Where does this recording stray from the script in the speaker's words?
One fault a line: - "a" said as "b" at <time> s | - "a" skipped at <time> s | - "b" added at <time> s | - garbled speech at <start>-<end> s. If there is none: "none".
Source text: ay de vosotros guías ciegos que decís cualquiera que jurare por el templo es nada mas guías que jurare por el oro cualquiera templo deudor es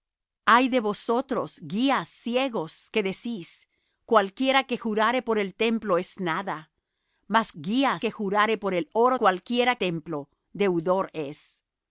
none